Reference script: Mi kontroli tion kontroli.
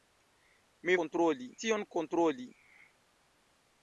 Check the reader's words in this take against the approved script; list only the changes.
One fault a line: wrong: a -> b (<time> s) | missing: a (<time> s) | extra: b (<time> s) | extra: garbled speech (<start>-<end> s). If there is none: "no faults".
no faults